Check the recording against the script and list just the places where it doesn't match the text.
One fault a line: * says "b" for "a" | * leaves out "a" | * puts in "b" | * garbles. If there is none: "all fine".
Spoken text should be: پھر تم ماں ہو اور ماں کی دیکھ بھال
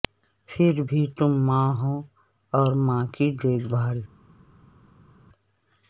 * puts in "بھی"